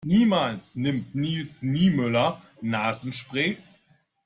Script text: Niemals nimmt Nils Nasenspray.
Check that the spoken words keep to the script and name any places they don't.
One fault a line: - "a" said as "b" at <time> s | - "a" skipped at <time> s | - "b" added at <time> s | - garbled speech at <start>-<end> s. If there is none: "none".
- "Niemöller" added at 1.6 s